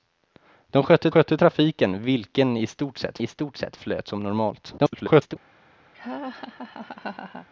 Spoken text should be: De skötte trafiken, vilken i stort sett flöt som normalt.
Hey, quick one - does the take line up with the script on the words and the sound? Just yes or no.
no